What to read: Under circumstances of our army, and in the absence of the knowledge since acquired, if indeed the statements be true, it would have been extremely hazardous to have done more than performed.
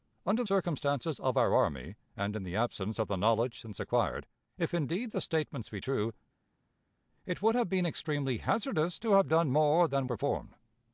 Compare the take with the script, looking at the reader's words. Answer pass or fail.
pass